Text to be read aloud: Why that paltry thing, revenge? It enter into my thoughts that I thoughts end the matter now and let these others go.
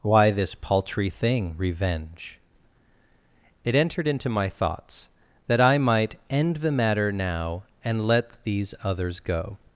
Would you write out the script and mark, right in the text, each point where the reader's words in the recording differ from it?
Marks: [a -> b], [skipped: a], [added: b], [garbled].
Why [that -> this] paltry thing, revenge? It [enter -> entered] into my thoughts that I [thoughts -> might] end the matter now and let these others go.